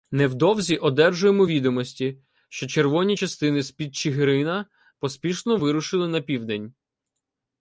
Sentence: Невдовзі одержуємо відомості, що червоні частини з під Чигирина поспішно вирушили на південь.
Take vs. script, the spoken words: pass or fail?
pass